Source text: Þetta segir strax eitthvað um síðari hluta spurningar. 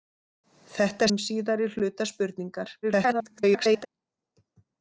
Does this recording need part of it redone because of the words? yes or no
yes